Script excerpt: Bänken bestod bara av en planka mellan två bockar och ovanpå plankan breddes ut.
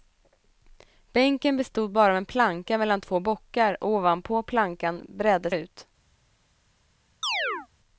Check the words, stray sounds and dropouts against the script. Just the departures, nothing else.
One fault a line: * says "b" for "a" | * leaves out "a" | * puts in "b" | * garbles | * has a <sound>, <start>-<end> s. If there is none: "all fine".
* has a chirp, 7.2-7.7 s